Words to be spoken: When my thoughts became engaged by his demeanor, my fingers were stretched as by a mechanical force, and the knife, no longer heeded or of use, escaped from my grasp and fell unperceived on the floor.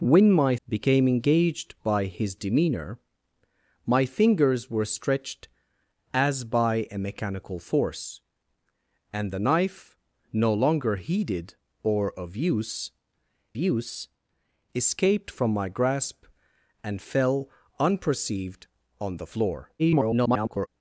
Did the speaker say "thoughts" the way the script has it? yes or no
no